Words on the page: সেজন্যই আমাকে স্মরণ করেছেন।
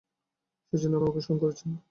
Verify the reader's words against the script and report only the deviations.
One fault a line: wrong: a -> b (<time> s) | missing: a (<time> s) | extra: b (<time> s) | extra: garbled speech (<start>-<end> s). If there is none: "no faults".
no faults